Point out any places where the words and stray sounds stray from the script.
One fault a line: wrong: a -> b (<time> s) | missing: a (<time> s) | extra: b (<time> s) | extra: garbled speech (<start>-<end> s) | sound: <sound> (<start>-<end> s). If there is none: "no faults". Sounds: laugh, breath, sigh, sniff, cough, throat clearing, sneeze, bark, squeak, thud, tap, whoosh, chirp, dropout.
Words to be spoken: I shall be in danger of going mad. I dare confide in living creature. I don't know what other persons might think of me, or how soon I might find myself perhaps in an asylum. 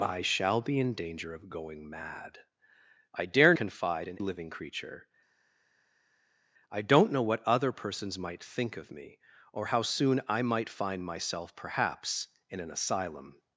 no faults